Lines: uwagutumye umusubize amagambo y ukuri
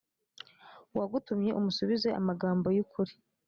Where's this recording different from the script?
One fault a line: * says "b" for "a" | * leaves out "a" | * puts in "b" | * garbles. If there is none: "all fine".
all fine